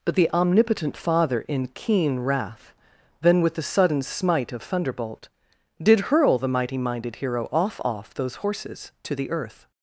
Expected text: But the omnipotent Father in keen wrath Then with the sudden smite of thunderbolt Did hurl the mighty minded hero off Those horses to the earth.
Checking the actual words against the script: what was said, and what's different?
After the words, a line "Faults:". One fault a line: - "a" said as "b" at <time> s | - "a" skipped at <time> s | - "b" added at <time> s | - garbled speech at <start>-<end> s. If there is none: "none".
But the omnipotent Father in keen wrath Then with the sudden smite of thunderbolt Did hurl the mighty minded hero off off Those horses to the earth.
Faults:
- "off" added at 7.8 s